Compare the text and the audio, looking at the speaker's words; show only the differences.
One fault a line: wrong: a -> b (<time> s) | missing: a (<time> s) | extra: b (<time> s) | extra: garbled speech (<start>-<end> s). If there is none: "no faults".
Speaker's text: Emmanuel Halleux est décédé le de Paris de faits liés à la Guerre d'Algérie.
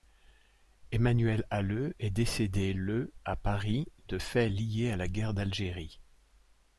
wrong: de -> à (3.2 s)